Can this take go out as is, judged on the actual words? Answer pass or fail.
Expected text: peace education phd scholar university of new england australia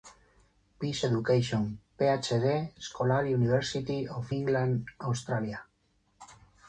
fail